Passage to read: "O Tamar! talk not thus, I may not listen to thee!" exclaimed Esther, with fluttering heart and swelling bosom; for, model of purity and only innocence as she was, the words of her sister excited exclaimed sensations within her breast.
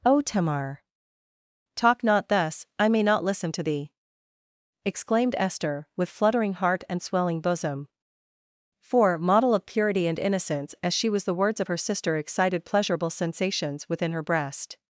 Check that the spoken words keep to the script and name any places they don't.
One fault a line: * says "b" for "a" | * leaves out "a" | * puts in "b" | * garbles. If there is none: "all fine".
* leaves out "only"
* says "pleasurable" for "exclaimed"